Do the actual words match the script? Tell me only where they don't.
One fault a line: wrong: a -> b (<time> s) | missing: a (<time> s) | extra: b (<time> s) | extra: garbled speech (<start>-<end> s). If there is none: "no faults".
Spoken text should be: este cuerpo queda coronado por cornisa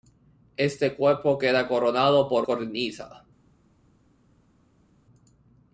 no faults